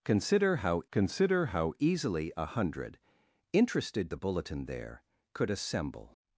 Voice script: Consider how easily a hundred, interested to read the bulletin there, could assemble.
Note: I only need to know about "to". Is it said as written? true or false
false